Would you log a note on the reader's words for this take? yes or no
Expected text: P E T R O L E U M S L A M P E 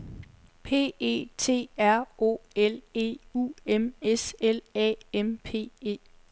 no